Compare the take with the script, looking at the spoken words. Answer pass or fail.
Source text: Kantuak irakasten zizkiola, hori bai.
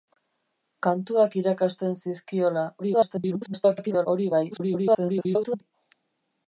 fail